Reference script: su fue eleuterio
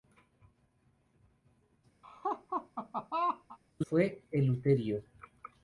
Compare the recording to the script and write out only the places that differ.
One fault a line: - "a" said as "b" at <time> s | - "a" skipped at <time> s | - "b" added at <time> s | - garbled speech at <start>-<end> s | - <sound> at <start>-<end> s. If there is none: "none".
- laugh at 2.0-3.6 s